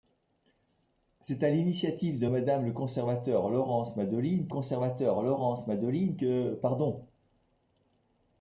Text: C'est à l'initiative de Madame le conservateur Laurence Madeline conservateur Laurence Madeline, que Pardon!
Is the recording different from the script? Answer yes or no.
no